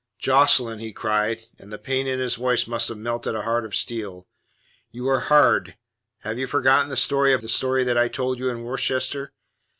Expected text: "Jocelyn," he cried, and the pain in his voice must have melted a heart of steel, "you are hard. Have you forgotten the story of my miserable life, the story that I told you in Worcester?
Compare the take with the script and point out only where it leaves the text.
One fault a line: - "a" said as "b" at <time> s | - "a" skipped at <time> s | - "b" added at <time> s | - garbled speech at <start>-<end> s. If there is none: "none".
- "my miserable life" skipped at 7.4 s